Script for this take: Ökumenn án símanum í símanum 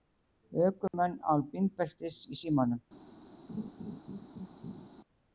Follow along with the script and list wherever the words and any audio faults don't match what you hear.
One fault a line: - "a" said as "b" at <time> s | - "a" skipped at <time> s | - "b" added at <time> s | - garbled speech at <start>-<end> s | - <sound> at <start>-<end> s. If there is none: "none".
- dropout at 0.9-0.9 s
- "símanum" said as "bílbeltis" at 1.5 s
- laugh at 3.5-4.9 s